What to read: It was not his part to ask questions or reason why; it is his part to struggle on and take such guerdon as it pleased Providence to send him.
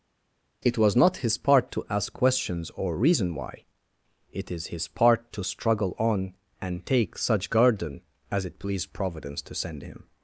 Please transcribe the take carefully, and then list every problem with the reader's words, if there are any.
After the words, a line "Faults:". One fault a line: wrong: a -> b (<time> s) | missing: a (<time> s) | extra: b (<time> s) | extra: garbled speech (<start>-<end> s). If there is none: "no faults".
It was not his part to ask questions or reason why; it is his part to struggle on and take such guerdon as it pleased Providence to send him.
Faults:
no faults